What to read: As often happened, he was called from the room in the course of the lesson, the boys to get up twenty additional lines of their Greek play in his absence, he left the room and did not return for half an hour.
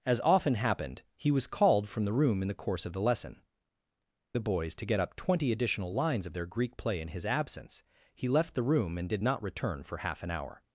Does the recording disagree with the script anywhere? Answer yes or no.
no